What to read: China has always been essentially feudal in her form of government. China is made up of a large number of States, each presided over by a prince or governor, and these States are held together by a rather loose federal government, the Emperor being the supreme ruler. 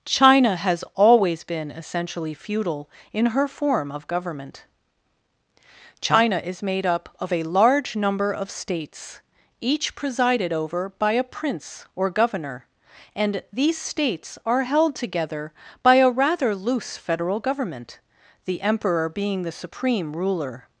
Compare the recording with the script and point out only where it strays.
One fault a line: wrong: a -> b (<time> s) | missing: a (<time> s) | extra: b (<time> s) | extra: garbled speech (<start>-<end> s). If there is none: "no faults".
no faults